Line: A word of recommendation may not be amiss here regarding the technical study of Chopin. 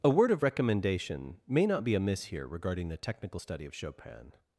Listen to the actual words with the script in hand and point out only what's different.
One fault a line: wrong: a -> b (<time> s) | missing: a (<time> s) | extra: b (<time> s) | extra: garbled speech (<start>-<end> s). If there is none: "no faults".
no faults